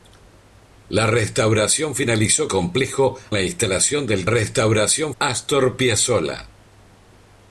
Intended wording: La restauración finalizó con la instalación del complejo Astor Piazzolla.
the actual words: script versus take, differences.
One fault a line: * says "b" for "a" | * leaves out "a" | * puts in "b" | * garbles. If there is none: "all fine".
* says "complejo" for "con"
* says "restauración" for "complejo"